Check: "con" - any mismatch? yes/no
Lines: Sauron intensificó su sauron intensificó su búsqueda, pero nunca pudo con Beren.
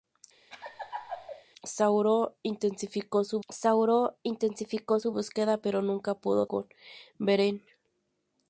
no